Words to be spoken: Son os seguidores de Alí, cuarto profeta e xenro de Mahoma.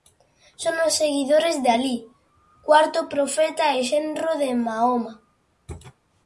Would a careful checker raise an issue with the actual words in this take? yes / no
no